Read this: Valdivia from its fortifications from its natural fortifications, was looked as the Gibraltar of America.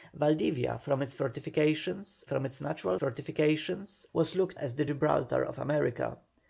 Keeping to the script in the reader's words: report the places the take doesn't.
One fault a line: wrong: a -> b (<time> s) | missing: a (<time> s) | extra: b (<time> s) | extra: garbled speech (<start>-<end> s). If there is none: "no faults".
no faults